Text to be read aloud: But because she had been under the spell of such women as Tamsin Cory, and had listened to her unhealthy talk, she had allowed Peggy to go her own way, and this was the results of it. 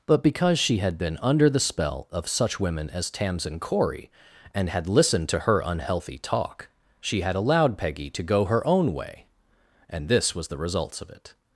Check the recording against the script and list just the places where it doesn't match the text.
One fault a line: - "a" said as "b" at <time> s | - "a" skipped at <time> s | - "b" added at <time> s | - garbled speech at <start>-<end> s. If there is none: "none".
none